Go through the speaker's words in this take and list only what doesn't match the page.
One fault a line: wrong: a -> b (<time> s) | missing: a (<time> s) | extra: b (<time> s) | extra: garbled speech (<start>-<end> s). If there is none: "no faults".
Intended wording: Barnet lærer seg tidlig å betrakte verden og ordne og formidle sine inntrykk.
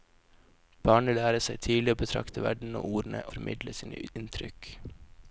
missing: og (3.2 s)